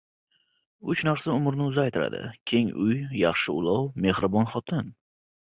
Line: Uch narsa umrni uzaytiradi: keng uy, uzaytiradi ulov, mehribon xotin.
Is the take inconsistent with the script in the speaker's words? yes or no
yes